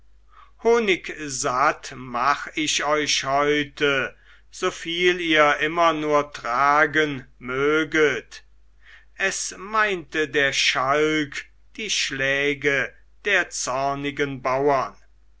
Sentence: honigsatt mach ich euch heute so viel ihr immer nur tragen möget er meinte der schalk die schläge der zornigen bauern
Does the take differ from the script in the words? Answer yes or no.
yes